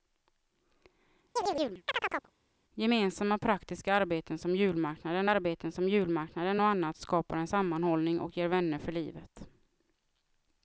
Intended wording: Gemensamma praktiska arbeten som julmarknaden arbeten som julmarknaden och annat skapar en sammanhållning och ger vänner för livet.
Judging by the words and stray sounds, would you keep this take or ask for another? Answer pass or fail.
fail